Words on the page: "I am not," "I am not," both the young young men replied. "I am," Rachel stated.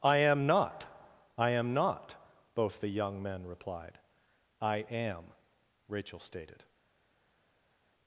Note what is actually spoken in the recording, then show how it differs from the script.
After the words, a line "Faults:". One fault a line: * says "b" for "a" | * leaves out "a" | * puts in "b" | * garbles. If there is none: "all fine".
"I am not," "I am not," both the young men replied. "I am," Rachel stated.
Faults:
* leaves out "young"